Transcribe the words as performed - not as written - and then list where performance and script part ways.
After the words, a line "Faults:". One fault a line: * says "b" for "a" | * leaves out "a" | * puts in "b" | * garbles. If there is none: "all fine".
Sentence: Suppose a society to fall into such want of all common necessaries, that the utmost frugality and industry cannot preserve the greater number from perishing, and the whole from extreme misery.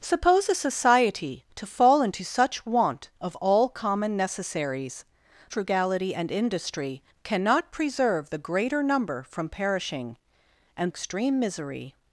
Suppose a society to fall into such want of all common necessaries, frugality and industry cannot preserve the greater number from perishing, and extreme misery.
Faults:
* leaves out "that the utmost"
* leaves out "the whole from"